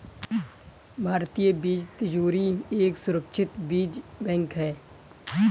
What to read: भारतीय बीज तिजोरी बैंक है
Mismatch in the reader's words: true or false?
true